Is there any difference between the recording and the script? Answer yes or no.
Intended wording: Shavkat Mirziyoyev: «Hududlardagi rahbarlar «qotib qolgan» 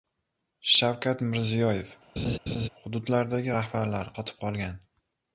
no